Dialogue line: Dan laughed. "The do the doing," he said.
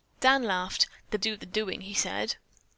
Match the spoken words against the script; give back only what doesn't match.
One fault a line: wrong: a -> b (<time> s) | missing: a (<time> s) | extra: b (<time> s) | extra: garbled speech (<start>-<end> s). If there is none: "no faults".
no faults